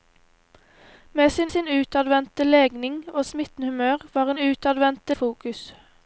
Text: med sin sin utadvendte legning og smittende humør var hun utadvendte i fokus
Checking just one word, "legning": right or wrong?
right